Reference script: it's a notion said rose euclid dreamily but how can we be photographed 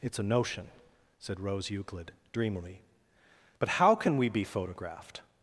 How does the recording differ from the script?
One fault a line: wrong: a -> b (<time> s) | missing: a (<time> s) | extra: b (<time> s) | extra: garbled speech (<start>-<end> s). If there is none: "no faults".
no faults